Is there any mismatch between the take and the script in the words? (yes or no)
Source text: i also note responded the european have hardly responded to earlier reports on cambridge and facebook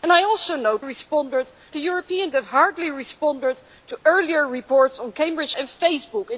no